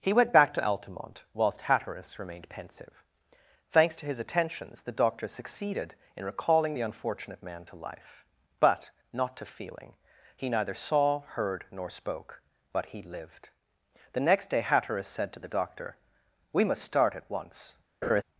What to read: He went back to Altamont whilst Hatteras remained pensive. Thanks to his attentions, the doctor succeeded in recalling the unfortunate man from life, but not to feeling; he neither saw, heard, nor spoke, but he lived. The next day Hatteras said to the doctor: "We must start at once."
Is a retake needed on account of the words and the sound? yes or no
yes